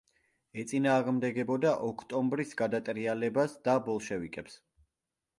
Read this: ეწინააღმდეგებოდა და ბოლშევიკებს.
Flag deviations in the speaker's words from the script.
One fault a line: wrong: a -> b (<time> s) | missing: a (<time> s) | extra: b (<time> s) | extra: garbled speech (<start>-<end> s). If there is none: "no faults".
extra: ოქტომბრის გადატრიალებას (1.9 s)